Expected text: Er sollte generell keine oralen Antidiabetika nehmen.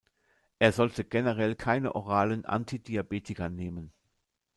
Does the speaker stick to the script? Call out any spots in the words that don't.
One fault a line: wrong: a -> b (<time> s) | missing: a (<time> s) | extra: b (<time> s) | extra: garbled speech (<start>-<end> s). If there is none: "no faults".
no faults